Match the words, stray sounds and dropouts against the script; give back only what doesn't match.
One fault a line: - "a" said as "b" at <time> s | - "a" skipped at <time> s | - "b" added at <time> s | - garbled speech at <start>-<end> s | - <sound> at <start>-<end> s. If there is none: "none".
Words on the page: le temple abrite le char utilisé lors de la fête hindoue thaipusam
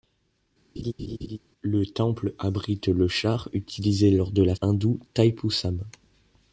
- laugh at 0.8-1.4 s
- "fête" skipped at 4.6 s